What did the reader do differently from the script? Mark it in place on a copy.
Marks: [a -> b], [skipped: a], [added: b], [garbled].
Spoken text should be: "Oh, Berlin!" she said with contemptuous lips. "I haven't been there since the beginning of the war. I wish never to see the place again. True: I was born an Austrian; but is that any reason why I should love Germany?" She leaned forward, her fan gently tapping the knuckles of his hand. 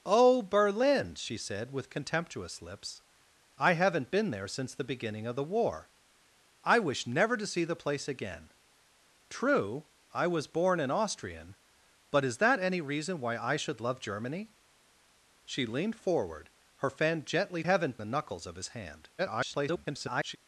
"Oh, Berlin!" she said with contemptuous lips. "I haven't been there since the beginning of the war. I wish never to see the place again. True: I was born an Austrian; but is that any reason why I should love Germany?" She leaned forward, her fan gently [tapping -> haven't] the knuckles of his hand. [garbled]